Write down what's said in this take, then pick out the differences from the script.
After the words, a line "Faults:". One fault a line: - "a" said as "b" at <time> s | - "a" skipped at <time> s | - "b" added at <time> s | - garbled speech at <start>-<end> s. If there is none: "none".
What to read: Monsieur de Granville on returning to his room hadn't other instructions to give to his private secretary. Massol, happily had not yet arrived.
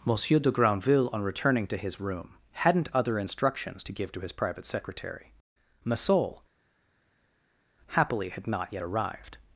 Monsieur de Granville on returning to his room hadn't other instructions to give to his private secretary. Massol, happily had not yet arrived.
Faults:
none